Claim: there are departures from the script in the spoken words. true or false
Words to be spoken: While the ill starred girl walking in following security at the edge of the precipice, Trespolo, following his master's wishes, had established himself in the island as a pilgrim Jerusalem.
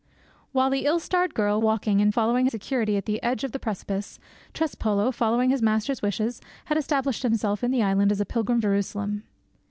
false